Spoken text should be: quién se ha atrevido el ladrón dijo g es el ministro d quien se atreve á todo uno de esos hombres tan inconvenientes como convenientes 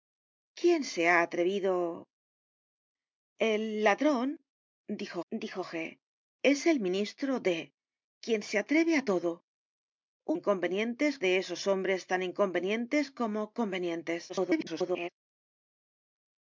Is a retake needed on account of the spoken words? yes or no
yes